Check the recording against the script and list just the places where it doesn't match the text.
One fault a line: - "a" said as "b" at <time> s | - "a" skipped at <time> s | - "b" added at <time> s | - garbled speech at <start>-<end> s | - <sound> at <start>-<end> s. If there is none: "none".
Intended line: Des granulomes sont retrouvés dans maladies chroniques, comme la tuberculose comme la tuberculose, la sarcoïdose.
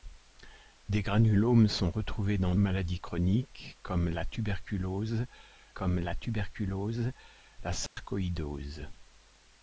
- dropout at 7.9-8.0 s